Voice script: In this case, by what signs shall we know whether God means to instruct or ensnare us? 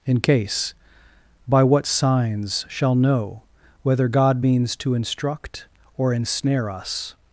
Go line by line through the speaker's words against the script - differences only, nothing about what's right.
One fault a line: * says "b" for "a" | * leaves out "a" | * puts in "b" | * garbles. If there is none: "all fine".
* leaves out "this"
* leaves out "we"